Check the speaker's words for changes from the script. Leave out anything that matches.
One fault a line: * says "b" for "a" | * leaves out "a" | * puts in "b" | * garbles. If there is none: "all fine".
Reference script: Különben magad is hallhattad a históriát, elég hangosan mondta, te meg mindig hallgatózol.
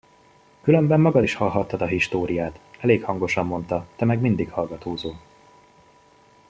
all fine